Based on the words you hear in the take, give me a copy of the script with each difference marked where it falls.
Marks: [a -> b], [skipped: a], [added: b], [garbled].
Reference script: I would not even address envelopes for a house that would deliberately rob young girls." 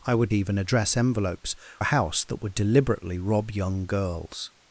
I would [skipped: not] even address envelopes [skipped: for] a house that would deliberately rob young girls."